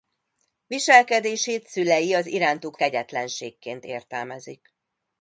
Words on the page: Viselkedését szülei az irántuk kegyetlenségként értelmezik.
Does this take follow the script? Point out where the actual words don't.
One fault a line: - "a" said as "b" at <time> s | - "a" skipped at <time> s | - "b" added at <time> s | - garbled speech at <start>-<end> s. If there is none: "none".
none